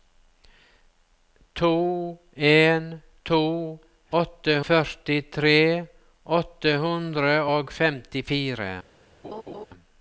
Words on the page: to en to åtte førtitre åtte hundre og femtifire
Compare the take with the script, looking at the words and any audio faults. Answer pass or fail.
fail